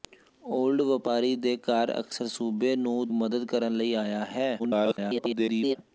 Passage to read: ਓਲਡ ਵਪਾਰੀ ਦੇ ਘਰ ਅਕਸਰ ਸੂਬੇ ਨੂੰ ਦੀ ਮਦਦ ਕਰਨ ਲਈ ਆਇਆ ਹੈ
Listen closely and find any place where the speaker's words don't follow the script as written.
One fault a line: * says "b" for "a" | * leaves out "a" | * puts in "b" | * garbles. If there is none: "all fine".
* leaves out "ਦੀ"
* garbles